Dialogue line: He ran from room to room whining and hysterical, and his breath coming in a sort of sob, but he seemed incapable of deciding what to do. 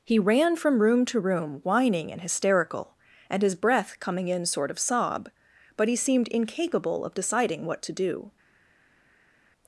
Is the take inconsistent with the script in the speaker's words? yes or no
yes